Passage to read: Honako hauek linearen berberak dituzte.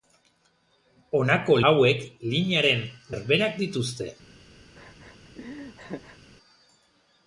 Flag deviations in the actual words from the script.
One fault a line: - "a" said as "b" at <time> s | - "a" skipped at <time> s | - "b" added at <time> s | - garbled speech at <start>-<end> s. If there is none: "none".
none